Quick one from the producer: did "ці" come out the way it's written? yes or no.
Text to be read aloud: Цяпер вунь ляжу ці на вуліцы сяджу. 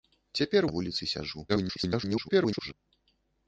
no